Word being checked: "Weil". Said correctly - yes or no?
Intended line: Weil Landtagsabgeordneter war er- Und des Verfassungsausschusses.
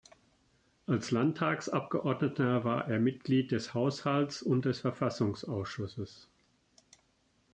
no